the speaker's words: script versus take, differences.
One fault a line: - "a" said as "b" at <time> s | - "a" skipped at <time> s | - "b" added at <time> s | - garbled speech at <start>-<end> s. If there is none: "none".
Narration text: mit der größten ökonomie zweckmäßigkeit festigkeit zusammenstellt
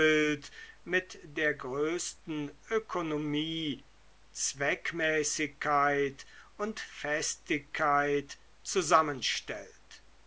- "und" added at 6.6 s